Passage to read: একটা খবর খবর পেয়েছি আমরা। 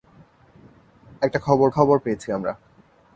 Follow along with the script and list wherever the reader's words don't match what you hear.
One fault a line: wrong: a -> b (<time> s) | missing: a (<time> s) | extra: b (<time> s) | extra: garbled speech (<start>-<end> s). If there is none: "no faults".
no faults